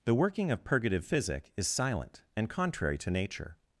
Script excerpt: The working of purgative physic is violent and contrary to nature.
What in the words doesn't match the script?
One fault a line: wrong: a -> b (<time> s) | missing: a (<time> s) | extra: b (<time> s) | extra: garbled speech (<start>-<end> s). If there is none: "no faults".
wrong: violent -> silent (1.7 s)